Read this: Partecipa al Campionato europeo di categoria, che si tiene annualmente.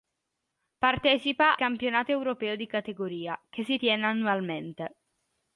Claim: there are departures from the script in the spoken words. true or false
true